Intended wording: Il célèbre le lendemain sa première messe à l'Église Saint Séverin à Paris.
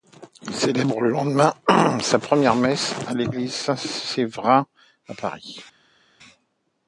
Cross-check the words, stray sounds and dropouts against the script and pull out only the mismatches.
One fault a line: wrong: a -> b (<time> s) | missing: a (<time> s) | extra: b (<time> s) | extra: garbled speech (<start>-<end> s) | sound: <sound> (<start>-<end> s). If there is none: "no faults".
no faults